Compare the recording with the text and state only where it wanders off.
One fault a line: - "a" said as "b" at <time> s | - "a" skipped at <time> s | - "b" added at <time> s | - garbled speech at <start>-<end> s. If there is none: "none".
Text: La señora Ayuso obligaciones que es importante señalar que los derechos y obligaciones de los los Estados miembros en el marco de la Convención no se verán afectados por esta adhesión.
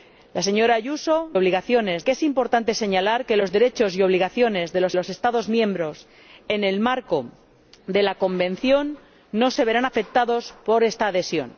none